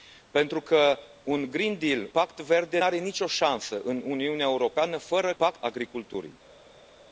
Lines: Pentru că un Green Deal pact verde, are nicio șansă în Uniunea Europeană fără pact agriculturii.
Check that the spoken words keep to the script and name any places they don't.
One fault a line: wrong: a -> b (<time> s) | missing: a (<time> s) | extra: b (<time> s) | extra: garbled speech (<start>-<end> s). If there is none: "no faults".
no faults